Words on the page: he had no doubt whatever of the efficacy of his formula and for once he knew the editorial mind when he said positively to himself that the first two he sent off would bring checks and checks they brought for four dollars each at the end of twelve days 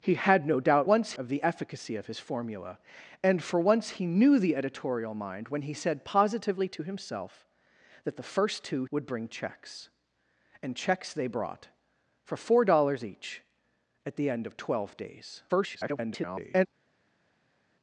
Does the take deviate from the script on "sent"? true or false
true